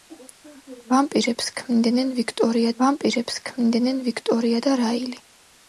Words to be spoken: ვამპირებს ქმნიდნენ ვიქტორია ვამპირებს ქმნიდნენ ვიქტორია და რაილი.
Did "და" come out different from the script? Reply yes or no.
no